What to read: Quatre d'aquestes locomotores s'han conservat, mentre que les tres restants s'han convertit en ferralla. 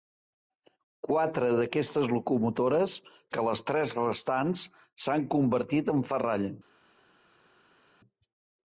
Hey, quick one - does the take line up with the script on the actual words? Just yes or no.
no